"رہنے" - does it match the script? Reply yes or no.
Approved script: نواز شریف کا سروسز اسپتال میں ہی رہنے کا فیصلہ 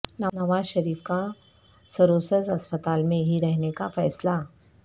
yes